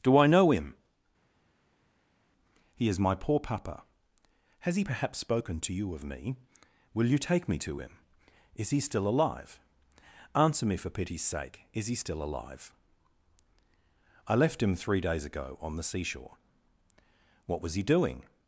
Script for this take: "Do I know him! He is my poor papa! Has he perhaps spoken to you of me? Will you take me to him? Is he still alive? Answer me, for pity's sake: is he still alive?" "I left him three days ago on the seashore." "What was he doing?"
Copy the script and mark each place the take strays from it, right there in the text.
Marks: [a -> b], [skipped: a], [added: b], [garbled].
"Do I know him! He is my poor papa! Has he perhaps spoken to you of me? Will you take me to him? Is he still alive? Answer me, for pity's sake: is he still alive?" "I left him three days ago on the seashore." "What was he doing?"